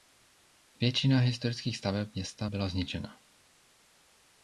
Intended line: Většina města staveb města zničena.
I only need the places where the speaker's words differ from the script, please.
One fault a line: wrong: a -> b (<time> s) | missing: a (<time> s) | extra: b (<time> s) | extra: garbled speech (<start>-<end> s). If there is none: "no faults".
wrong: města -> historických (1.2 s)
extra: byla (2.4 s)